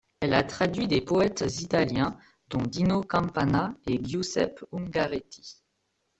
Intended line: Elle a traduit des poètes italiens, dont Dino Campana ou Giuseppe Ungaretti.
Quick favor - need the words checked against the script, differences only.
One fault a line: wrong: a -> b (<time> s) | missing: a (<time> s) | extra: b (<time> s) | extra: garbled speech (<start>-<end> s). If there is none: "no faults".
wrong: ou -> et (3.9 s)